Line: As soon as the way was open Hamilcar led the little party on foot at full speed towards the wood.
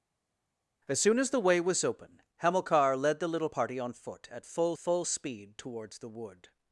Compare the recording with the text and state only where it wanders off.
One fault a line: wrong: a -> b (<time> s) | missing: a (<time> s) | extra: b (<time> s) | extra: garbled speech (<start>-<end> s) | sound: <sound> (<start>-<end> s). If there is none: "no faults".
extra: full (4.8 s)